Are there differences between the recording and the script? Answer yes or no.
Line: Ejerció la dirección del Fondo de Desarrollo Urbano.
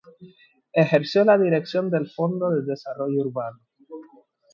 no